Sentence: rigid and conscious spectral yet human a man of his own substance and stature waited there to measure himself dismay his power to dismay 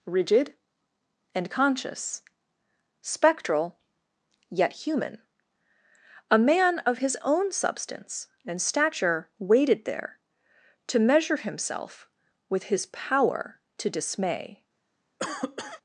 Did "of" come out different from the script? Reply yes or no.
no